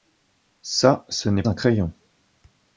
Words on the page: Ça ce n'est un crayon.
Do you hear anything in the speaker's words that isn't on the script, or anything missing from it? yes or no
no